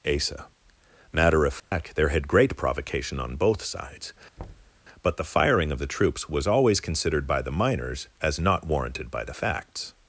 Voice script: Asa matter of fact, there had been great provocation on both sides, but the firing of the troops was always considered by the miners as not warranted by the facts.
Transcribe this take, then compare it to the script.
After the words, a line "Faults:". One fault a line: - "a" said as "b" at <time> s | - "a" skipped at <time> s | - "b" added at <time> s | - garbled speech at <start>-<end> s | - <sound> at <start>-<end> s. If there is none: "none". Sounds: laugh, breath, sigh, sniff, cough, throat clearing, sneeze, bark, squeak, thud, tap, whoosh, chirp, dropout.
Asa matter of fact, there had great provocation on both sides, but the firing of the troops was always considered by the miners as not warranted by the facts.
Faults:
- dropout at 1.6-1.7 s
- "been" skipped at 2.3 s
- thud at 4.4-4.8 s